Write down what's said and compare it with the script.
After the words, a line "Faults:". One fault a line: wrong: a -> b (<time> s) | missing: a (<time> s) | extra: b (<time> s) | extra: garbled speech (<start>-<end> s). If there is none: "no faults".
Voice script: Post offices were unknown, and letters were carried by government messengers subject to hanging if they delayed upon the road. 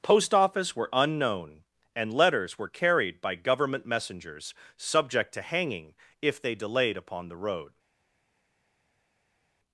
Post office were unknown, and letters were carried by government messengers subject to hanging if they delayed upon the road.
Faults:
wrong: offices -> office (0.3 s)